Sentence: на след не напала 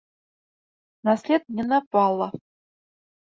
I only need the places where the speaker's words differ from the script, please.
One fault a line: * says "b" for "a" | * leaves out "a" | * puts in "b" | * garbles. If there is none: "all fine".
all fine